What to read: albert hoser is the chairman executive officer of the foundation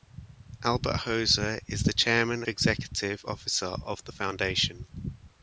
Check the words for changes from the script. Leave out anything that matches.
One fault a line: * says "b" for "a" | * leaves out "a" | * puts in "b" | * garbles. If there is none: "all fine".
all fine